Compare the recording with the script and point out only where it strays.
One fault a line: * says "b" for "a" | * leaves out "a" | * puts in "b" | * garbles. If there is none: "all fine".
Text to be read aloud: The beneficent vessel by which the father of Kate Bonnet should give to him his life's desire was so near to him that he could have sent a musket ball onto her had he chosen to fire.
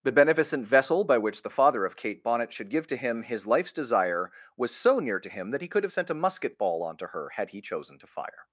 all fine